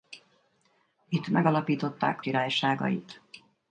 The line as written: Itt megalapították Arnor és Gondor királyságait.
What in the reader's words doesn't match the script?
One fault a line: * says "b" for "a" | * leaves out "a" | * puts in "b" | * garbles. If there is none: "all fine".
* leaves out "Arnor és Gondor"